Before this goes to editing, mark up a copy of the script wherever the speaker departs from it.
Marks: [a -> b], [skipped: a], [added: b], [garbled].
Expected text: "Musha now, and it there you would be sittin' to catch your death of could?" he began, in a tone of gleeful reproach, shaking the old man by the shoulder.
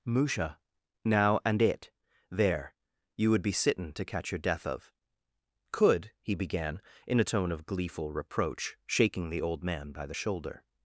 "Musha now, and it there you would be sittin' to catch your death of could?" he began, in a tone of gleeful reproach, shaking the old man by the shoulder.